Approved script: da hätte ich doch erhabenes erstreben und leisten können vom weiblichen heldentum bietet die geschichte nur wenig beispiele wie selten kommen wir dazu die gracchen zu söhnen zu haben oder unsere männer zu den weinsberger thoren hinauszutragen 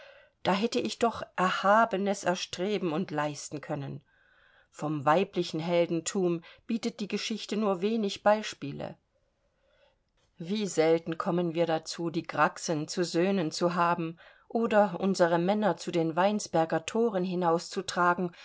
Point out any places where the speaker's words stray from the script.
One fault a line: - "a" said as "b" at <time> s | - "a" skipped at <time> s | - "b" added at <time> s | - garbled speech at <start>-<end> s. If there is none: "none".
none